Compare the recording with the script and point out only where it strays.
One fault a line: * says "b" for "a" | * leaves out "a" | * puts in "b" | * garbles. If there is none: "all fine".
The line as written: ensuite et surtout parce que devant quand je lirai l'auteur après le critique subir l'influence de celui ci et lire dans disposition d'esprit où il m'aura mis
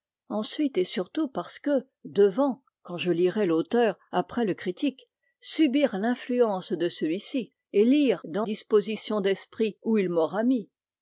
all fine